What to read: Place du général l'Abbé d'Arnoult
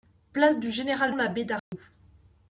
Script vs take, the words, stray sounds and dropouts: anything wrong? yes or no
yes